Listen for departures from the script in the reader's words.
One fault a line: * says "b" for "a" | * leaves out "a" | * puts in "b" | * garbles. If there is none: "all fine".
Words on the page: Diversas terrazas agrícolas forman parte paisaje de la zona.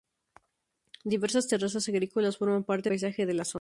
all fine